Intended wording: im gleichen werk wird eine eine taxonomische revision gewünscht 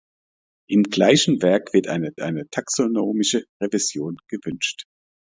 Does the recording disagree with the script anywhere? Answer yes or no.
no